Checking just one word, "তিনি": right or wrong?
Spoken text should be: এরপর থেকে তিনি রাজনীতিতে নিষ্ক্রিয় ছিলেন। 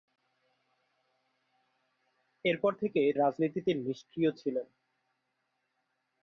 wrong